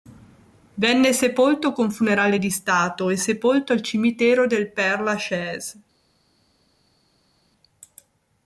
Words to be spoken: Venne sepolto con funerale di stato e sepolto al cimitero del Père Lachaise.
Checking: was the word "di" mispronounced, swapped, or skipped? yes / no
no